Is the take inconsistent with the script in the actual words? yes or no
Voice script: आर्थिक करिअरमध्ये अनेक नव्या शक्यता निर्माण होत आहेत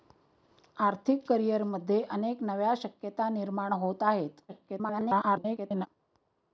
yes